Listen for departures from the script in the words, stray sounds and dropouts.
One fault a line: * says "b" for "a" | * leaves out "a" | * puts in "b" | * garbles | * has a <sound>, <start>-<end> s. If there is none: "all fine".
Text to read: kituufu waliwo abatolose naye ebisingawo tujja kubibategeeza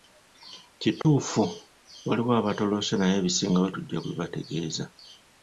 * has a dropout, 1.0-1.0 s